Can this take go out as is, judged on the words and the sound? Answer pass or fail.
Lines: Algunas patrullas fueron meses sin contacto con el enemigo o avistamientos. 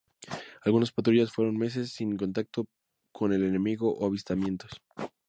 pass